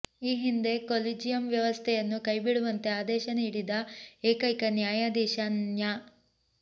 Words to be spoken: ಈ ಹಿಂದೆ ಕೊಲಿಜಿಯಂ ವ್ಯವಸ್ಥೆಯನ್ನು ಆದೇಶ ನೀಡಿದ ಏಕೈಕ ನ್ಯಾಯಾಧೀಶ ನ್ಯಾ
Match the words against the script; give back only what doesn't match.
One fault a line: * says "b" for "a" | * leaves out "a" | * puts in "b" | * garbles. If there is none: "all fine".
* puts in "ಕೈಬಿಡುವಂತೆ"